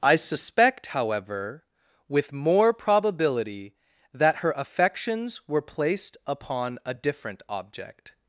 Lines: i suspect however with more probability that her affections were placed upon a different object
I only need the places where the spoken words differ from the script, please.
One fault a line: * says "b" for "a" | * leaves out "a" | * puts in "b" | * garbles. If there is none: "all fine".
all fine